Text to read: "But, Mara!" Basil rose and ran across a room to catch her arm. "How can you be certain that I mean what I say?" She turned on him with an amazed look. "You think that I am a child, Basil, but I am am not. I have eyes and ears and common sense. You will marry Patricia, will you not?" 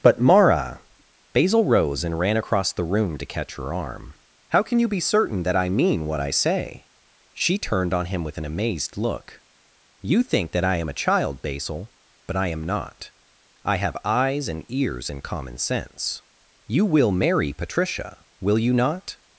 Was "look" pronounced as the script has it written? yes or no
yes